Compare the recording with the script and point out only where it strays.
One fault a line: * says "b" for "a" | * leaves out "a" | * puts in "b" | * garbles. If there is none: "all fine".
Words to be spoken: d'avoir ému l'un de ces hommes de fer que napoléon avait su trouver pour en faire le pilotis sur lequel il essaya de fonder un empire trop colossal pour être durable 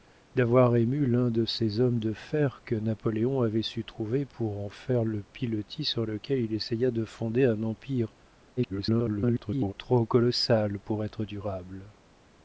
* garbles